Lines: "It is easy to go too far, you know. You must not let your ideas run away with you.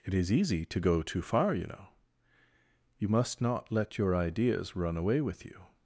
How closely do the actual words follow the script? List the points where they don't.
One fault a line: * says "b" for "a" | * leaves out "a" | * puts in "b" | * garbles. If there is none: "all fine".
all fine